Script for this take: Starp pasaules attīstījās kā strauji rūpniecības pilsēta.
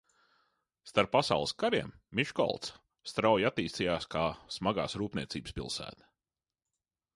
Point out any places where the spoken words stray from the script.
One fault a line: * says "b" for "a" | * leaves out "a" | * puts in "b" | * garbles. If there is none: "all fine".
* puts in "kariem Miškolca strauji"
* says "smagās" for "strauji"